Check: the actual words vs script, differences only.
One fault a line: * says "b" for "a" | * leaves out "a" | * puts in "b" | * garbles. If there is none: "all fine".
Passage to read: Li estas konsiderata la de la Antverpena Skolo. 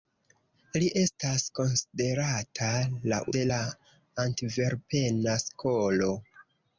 all fine